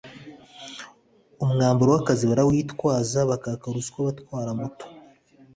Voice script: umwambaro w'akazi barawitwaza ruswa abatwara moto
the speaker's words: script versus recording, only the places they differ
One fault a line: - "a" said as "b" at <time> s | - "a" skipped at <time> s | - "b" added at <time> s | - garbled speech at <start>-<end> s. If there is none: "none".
- "bakaka" added at 3.3 s